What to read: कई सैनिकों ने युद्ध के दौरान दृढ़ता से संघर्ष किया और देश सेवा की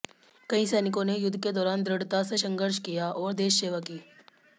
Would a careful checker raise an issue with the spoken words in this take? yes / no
no